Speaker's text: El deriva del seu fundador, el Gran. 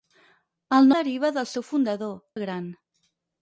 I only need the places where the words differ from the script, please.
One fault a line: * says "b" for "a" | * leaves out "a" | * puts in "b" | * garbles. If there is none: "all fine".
all fine